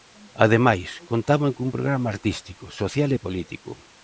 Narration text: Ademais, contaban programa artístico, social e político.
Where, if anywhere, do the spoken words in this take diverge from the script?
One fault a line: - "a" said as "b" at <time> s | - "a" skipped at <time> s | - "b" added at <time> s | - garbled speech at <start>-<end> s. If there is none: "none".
- "cun" added at 1.6 s